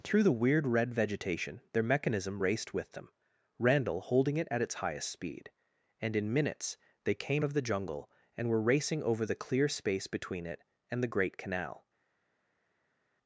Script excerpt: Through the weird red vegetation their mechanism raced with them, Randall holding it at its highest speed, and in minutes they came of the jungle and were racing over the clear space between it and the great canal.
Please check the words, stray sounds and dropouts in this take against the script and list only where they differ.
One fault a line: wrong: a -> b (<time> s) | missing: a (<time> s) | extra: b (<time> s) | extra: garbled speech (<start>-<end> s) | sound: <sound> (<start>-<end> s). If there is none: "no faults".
no faults